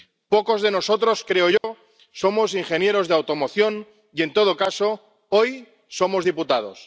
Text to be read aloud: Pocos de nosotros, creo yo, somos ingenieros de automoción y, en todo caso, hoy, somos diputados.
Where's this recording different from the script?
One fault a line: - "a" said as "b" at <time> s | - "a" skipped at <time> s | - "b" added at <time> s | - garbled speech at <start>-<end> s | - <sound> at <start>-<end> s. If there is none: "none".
- dropout at 1.6-1.6 s